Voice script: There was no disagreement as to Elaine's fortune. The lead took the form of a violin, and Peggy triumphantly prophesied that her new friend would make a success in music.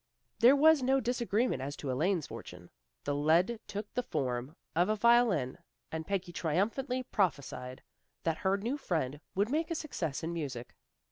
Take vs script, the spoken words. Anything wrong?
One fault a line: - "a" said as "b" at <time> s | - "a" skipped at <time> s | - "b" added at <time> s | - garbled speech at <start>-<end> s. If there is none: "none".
none